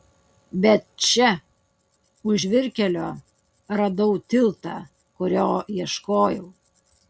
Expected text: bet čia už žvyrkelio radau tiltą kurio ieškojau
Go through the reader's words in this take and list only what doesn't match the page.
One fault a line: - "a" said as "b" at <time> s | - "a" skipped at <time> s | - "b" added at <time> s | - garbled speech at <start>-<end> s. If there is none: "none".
none